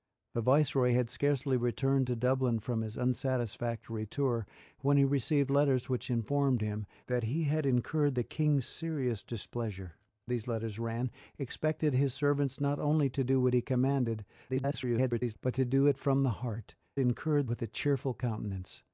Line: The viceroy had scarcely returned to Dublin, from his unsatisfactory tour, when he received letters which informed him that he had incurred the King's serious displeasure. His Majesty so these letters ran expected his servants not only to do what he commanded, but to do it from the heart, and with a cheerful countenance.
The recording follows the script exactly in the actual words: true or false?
false